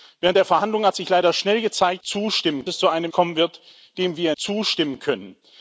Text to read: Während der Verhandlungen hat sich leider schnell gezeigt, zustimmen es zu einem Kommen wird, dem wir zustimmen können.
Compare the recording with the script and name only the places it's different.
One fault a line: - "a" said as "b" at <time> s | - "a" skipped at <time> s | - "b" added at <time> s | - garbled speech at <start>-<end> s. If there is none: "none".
none